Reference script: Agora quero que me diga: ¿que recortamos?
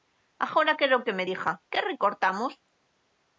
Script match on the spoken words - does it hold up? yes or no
yes